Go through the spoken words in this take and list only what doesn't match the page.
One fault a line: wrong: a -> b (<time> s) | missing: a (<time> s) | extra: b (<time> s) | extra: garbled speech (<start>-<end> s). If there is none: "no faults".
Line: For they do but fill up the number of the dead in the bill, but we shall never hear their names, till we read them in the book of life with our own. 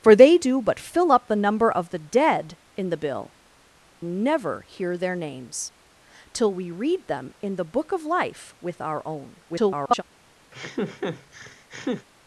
missing: but we shall (3.4 s)
extra: garbled speech (9.5-10.0 s)